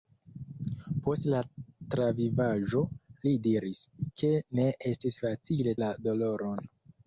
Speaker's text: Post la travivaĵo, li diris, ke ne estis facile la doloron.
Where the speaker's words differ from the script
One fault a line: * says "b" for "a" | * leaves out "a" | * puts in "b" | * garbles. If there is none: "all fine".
all fine